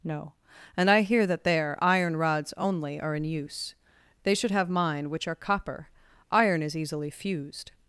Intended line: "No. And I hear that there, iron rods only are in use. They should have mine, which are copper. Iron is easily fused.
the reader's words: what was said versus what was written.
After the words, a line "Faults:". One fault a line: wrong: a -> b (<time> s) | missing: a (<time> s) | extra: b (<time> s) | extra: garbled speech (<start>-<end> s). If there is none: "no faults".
"No. And I hear that there, iron rods only are in use. They should have mine, which are copper. Iron is easily fused.
Faults:
no faults